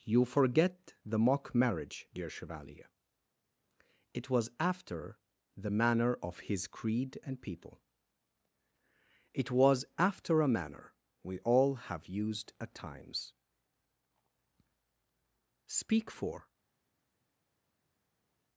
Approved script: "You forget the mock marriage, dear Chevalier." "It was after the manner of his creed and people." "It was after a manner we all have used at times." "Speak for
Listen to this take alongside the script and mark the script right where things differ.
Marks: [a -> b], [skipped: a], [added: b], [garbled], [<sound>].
"You forget the mock marriage, dear Chevalier." "It was after the manner of his creed and people." "It was after a manner we all have used at times." "Speak for